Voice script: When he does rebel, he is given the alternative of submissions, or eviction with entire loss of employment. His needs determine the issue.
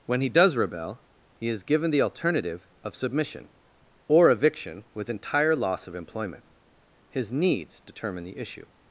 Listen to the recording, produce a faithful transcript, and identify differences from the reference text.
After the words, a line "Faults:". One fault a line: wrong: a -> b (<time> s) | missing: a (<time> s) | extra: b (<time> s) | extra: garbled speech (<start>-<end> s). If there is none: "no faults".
When he does rebel, he is given the alternative of submission, or eviction with entire loss of employment. His needs determine the issue.
Faults:
wrong: submissions -> submission (3.0 s)